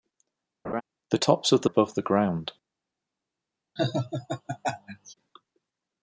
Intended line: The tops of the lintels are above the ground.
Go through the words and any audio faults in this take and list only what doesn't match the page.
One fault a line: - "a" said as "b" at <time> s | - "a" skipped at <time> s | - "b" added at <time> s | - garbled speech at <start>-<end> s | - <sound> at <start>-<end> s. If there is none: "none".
- laugh at 0.6-0.8 s
- "lintels are" skipped at 1.7 s
- laugh at 3.8-5.1 s